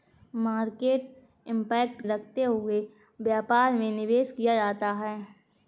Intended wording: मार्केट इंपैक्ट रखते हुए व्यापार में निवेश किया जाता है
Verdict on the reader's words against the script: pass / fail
pass